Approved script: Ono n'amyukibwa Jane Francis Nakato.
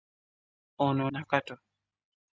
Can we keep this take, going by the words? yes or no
no